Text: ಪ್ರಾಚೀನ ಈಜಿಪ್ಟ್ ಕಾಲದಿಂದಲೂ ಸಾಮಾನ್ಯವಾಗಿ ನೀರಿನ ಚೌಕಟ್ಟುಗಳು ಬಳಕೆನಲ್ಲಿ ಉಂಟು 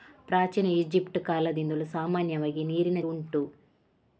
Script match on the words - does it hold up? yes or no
no